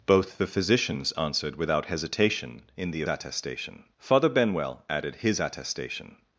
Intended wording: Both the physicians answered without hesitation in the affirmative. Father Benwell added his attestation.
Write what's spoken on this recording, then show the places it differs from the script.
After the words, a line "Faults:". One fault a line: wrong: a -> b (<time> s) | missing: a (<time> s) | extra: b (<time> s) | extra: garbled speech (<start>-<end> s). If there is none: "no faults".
Both the physicians answered without hesitation in the attestation. Father Benwell added his attestation.
Faults:
wrong: affirmative -> attestation (3.1 s)